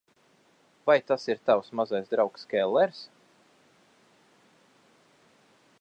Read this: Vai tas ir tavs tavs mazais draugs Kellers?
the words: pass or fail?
fail